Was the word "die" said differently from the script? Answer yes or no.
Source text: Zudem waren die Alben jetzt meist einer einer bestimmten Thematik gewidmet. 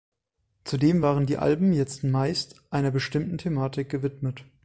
no